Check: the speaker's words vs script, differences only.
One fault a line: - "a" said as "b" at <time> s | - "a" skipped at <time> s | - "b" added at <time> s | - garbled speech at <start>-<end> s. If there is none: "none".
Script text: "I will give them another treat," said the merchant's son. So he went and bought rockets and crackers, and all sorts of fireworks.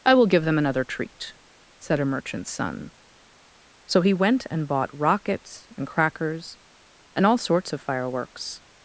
- "the" said as "a" at 2.0 s